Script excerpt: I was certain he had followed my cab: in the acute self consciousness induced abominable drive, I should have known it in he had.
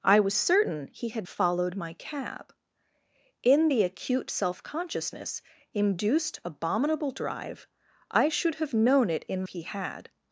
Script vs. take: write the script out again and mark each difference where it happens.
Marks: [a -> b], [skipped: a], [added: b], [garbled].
I was certain he had followed my cab: in the acute self consciousness induced abominable drive, I should have known it in he had.